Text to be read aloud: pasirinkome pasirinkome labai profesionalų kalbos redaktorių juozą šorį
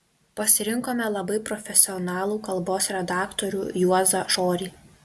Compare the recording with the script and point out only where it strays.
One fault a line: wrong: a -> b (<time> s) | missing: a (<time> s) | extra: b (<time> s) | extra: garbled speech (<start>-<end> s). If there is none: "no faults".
missing: pasirinkome (1.1 s)